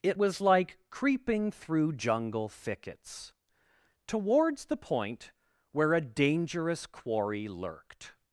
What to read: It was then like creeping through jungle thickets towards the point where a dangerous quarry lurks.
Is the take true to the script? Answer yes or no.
no